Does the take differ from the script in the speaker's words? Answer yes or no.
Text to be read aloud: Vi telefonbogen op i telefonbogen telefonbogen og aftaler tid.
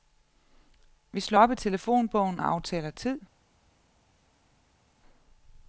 yes